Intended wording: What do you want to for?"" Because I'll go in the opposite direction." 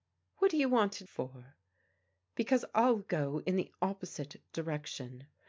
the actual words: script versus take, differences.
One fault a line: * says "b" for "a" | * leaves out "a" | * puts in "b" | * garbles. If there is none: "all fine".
all fine